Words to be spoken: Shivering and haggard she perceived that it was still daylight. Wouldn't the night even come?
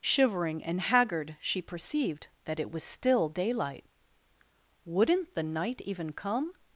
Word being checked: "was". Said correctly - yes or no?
yes